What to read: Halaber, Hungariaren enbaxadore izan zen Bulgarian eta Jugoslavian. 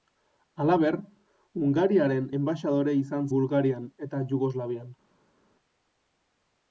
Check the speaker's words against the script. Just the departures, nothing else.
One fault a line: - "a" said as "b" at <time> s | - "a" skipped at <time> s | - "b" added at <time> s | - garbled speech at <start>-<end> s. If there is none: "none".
- "zen" skipped at 3.3 s